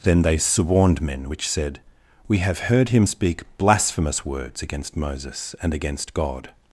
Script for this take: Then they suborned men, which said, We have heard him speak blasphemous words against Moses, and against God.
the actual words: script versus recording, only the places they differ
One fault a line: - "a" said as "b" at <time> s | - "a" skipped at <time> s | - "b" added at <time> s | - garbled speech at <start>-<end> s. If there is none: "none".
none